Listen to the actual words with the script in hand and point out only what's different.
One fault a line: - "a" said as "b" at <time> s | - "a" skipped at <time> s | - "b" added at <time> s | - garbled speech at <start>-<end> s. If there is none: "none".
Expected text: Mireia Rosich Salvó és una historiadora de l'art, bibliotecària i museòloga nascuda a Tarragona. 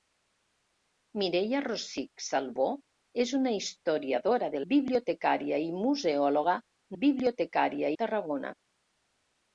- "l'art" skipped at 4.6 s
- "nascuda" said as "bibliotecària" at 7.0 s